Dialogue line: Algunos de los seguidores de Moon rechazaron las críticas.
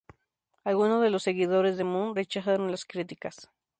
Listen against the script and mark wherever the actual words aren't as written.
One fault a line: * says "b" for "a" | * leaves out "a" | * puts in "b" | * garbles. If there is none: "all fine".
all fine